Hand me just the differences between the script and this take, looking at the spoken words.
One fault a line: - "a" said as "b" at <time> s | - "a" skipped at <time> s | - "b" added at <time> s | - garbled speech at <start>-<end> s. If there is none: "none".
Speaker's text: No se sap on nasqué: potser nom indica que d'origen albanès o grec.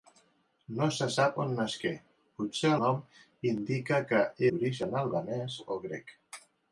none